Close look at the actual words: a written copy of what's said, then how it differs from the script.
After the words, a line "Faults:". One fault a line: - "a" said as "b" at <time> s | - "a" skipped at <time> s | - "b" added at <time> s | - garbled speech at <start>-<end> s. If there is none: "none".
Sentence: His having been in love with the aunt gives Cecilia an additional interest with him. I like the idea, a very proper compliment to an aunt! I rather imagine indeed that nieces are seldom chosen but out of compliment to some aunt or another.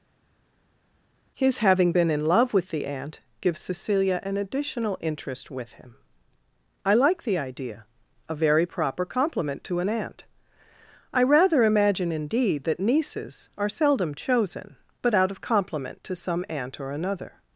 His having been in love with the aunt gives Cecilia an additional interest with him. I like the idea, a very proper compliment to an aunt! I rather imagine indeed that nieces are seldom chosen but out of compliment to some aunt or another.
Faults:
none